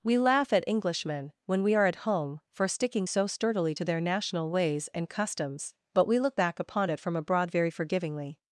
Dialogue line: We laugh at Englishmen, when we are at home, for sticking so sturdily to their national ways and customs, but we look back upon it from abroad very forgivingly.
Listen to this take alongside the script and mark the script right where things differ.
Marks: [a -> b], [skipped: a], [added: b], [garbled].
We laugh at Englishmen, when we are at home, for sticking so sturdily to their national ways and customs, but we look back upon it from abroad very forgivingly.